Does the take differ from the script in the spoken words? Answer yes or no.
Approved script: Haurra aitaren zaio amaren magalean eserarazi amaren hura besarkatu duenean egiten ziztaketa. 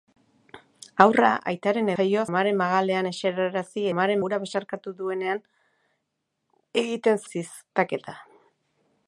no